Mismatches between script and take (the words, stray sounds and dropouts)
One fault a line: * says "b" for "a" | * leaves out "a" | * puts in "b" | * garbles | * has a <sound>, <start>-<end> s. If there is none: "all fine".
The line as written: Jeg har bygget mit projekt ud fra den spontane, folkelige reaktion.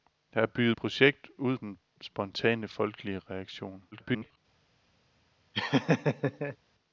* leaves out "mit"
* leaves out "fra"
* garbles
* has a laugh, 5.5-6.6 s